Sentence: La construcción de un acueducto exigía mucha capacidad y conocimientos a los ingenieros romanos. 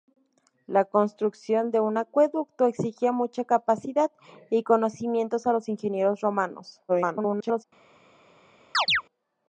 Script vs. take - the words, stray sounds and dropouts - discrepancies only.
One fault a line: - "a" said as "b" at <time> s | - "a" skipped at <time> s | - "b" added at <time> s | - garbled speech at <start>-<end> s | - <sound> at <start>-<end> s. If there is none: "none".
- garbled speech at 6.9-7.6 s
- chirp at 8.7-9.0 s